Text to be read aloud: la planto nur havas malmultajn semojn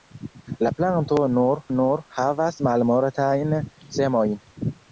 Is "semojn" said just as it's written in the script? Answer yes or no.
yes